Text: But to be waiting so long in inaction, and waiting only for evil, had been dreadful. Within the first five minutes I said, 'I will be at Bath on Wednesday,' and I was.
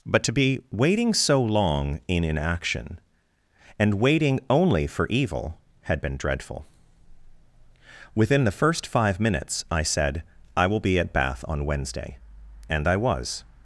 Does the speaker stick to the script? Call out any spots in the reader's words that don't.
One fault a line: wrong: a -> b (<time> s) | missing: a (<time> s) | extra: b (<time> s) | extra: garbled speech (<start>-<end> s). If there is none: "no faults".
no faults